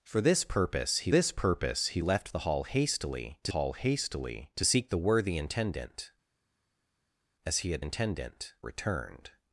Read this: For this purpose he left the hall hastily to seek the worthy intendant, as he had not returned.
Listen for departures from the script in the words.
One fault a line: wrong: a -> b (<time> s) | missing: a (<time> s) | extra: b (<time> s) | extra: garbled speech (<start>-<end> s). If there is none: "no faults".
extra: this purpose he (1.1 s)
extra: hall hastily to (3.5 s)
wrong: not -> intendant (7.8 s)